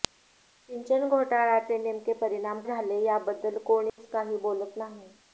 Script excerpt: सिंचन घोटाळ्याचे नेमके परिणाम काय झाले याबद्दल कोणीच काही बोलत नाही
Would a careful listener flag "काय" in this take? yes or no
yes